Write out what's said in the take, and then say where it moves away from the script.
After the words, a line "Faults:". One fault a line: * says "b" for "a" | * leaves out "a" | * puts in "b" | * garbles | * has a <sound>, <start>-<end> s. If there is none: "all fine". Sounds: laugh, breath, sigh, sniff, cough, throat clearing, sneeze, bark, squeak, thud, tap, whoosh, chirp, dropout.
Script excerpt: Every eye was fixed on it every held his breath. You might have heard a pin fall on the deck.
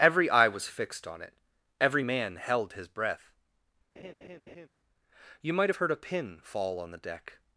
Every eye was fixed on it every man held his breath. You might have heard a pin fall on the deck.
Faults:
* puts in "man"
* has a laugh, 4.0-4.7 s